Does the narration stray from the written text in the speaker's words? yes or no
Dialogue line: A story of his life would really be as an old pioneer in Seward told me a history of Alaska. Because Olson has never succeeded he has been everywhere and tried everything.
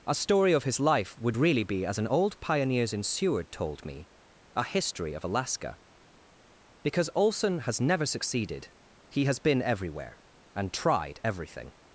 yes